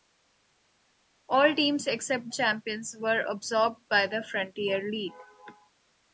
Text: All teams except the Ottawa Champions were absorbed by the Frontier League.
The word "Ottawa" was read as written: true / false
false